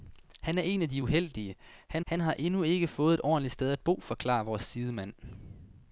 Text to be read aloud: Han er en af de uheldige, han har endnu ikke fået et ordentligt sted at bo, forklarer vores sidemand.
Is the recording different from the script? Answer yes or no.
yes